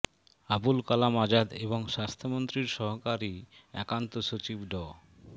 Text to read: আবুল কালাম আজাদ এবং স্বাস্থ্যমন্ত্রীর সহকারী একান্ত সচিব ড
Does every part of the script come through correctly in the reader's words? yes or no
yes